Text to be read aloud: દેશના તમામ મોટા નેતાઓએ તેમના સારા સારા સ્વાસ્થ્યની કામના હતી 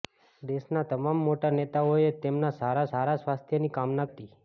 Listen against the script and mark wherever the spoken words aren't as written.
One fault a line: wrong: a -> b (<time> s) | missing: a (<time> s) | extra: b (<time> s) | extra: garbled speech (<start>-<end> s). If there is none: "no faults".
no faults